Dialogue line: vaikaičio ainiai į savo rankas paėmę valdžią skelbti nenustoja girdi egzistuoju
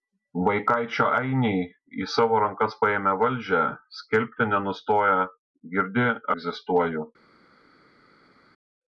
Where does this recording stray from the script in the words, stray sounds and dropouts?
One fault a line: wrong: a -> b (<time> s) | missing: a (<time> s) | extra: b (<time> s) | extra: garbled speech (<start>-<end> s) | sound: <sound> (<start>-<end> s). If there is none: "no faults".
no faults